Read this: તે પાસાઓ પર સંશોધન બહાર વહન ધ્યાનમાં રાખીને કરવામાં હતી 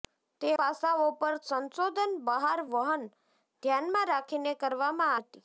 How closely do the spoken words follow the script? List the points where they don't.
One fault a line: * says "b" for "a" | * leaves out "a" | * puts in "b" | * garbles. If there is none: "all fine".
all fine